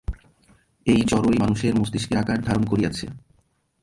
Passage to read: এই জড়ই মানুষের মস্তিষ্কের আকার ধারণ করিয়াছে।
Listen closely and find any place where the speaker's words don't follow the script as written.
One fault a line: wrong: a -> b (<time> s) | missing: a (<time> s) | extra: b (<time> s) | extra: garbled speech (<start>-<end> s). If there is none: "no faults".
no faults